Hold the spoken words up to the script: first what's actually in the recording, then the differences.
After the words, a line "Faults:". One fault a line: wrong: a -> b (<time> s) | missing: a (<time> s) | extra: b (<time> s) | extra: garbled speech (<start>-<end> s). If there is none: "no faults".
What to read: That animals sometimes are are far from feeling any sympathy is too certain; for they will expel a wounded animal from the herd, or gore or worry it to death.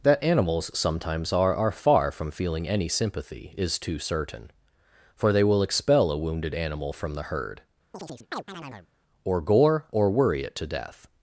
That animals sometimes are are far from feeling any sympathy is too certain; for they will expel a wounded animal from the herd, or gore or worry it to death.
Faults:
no faults